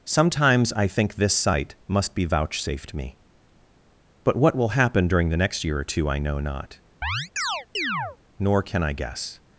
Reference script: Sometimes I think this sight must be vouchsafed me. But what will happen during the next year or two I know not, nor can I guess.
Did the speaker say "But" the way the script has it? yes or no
yes